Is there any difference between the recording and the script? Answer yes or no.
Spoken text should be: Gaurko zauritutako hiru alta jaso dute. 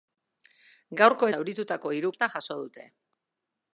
no